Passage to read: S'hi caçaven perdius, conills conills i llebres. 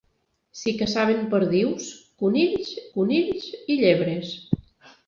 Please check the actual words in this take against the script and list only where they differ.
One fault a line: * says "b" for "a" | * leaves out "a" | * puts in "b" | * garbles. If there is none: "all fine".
all fine